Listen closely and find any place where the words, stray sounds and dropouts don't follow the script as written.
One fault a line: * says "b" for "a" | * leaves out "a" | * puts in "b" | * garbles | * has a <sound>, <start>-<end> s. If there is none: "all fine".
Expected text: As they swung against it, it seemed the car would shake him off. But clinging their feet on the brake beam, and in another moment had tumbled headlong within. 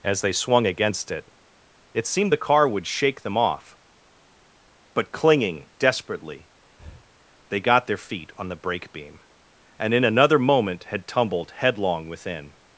* says "them" for "him"
* puts in "desperately they got"
* has a breath, 6.8-7.1 s